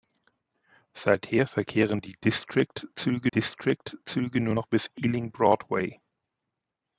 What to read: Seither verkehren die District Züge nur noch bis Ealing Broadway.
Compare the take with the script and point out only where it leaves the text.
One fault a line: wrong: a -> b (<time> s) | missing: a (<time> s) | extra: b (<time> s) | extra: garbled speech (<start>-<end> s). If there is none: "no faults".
extra: District Züge (3.3 s)